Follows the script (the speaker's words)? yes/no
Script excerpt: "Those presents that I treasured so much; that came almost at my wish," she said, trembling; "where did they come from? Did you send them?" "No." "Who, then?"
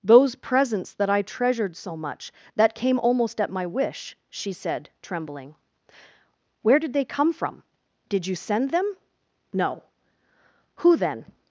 yes